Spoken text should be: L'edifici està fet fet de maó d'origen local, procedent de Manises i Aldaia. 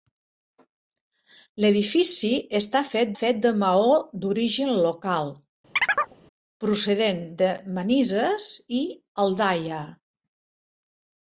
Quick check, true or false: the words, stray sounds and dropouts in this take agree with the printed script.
false